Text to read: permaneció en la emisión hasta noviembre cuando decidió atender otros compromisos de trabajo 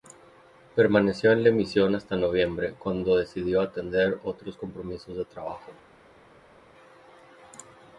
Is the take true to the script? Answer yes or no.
yes